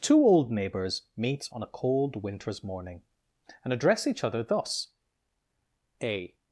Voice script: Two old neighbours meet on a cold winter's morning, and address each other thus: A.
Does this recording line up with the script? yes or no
yes